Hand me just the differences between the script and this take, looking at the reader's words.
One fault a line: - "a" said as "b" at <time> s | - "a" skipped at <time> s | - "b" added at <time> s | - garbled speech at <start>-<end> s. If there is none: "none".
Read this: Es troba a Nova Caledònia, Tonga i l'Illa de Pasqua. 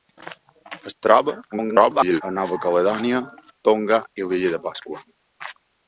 - garbled speech at 1.5-2.2 s